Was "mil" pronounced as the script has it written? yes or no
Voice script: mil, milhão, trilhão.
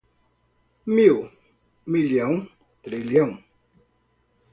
yes